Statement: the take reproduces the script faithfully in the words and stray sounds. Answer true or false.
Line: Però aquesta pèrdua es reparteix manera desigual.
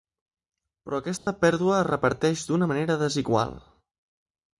false